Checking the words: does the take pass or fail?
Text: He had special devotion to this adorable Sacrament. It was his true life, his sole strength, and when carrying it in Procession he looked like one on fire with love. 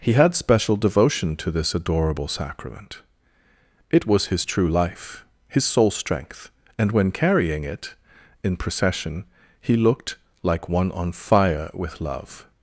pass